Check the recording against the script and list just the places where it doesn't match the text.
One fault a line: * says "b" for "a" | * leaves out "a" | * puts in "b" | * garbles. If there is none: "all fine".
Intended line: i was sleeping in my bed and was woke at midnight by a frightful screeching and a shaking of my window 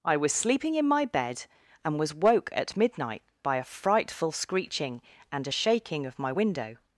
all fine